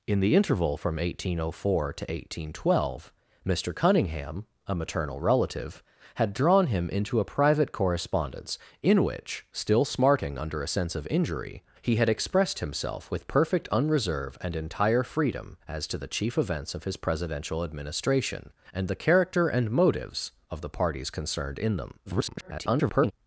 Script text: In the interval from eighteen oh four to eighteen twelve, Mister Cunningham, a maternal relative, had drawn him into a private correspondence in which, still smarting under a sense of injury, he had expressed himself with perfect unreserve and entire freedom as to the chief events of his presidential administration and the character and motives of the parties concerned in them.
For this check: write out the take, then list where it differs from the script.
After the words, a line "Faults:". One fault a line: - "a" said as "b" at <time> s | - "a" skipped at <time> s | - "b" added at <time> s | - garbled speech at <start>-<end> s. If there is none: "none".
In the interval from eighteen oh four to eighteen twelve, Mister Cunningham, a maternal relative, had drawn him into a private correspondence in which, still smarting under a sense of injury, he had expressed himself with perfect unreserve and entire freedom as to the chief events of his presidential administration and the character and motives of the parties concerned in them. [garbled]
Faults:
- garbled speech at 22.1-23.1 s